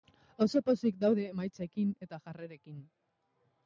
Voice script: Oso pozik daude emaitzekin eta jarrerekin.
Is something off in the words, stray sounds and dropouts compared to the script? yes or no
no